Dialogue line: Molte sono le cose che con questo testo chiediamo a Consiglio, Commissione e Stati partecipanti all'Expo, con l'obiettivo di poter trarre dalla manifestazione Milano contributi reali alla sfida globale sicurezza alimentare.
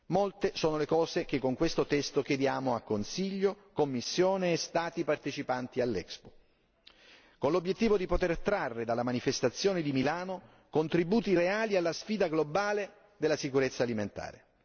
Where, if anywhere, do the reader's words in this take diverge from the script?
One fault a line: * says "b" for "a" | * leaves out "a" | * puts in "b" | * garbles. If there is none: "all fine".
* puts in "di"
* puts in "della"